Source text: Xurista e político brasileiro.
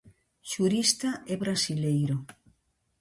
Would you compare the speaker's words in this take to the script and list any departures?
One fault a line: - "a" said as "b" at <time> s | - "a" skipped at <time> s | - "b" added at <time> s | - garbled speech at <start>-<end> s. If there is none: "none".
- "político" skipped at 1.4 s